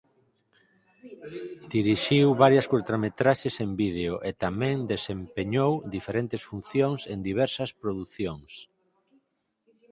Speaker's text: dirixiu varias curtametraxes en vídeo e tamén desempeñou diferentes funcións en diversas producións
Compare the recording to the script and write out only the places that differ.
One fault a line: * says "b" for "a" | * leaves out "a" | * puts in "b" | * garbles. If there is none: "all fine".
all fine